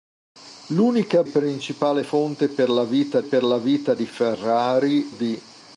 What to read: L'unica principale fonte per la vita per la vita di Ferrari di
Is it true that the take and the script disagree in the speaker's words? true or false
false